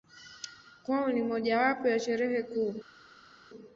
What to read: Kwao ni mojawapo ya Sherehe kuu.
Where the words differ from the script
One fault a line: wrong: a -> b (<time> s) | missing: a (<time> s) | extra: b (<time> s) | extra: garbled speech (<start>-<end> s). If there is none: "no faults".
no faults